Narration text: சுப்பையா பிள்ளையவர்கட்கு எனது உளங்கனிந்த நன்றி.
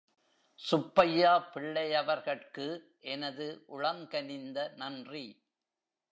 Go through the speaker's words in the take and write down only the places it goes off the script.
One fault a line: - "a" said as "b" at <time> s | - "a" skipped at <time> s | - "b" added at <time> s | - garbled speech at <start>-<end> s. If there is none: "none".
none